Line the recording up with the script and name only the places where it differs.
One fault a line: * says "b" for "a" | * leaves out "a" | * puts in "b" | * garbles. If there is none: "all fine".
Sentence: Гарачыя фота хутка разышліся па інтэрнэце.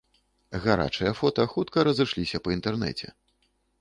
all fine